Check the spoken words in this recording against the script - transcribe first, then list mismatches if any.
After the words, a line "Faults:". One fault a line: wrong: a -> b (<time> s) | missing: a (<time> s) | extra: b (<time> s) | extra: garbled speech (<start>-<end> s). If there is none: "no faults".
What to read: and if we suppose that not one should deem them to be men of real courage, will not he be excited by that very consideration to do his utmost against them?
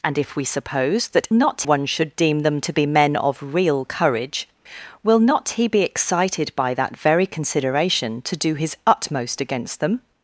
and if we suppose that not one should deem them to be men of real courage, will not he be excited by that very consideration to do his utmost against them?
Faults:
no faults